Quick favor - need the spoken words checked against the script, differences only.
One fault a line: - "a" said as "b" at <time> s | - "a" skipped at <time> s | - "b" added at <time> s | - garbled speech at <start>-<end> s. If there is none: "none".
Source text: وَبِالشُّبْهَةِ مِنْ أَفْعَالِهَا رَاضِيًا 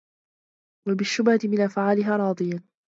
none